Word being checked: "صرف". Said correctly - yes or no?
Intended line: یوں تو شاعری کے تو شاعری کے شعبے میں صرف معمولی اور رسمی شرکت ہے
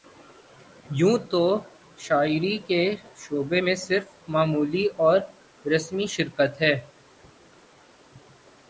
yes